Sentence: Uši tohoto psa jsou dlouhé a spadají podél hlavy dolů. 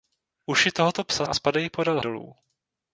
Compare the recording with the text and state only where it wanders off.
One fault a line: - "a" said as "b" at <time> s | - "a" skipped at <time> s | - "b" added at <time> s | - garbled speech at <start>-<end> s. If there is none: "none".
- "jsou dlouhé" skipped at 1.2 s
- "hlavy" skipped at 2.0 s